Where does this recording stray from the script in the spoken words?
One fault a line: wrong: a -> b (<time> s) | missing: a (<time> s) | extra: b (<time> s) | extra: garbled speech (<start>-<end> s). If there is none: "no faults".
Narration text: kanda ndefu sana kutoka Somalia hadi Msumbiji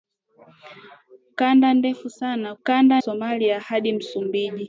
wrong: kutoka -> kanda (2.6 s)